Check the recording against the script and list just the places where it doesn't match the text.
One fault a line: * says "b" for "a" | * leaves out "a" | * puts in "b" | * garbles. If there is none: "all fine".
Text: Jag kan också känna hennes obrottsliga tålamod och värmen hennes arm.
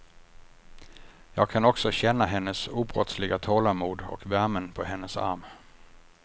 * puts in "på"